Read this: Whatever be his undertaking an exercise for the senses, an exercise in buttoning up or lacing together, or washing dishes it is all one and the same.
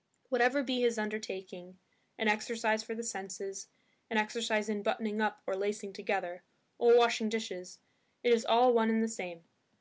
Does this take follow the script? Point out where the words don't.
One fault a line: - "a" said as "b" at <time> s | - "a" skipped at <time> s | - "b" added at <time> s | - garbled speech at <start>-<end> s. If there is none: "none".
none